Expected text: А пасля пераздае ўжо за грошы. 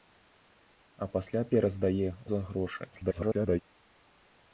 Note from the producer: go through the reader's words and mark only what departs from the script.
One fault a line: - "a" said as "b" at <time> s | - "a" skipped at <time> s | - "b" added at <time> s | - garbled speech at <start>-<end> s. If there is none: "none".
- "ўжо" skipped at 2.1 s
- garbled speech at 2.9-3.6 s